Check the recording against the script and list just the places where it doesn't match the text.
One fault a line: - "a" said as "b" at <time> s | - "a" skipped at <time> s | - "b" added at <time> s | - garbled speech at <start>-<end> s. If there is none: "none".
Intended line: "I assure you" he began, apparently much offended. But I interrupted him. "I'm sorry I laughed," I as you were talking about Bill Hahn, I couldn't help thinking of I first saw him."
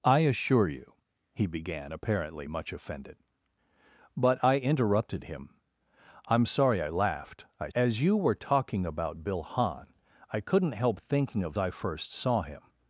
none